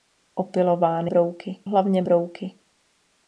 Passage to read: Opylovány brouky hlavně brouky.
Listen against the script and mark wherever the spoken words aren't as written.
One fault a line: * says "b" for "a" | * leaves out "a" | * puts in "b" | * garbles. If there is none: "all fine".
all fine